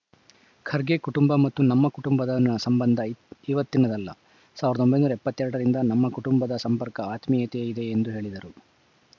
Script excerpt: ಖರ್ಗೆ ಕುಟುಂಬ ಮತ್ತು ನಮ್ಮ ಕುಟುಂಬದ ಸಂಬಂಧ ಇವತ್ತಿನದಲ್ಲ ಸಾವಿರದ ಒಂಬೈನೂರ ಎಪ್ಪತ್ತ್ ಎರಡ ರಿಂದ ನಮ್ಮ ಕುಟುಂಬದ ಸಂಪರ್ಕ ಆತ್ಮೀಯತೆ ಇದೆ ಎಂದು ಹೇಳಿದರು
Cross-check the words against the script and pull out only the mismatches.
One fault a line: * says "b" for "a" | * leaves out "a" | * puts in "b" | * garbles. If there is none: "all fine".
all fine